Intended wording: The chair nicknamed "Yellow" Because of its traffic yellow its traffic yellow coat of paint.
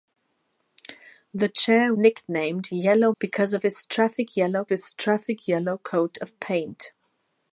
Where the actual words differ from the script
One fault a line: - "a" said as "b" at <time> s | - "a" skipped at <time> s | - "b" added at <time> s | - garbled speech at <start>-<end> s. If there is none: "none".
none